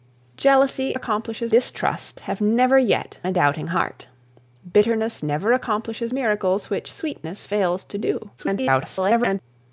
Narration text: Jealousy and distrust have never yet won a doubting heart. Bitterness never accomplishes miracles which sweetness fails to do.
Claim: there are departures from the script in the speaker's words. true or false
true